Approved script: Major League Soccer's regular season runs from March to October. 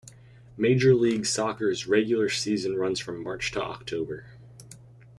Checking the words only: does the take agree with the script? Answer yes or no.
yes